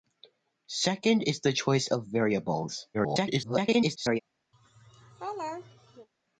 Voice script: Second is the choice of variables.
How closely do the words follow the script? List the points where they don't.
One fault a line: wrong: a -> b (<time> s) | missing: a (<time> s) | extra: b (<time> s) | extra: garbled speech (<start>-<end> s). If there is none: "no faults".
extra: garbled speech (2.9-4.2 s)